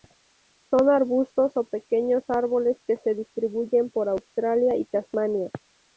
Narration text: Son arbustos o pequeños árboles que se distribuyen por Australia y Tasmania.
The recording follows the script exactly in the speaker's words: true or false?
true